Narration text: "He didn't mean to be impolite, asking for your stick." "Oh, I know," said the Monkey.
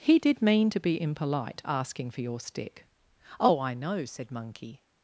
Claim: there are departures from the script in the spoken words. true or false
true